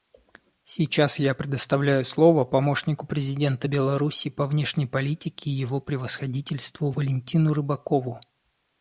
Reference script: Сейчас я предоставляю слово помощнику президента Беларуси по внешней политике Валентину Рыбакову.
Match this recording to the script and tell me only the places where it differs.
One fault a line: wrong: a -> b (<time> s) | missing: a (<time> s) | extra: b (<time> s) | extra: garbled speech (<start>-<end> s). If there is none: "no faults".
extra: Его Превосходительству (5.5 s)